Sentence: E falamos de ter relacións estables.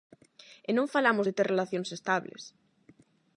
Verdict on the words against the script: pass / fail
fail